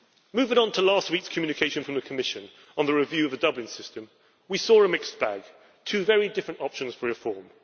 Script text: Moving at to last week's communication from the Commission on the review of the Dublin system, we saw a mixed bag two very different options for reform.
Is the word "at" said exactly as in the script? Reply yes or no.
no